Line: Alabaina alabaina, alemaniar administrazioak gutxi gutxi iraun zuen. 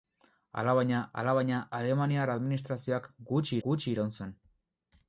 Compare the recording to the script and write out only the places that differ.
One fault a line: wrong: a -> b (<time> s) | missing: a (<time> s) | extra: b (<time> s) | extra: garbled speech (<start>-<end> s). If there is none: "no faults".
no faults